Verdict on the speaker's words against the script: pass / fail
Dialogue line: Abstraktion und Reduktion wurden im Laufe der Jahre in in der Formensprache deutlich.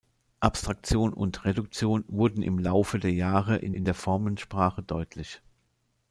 pass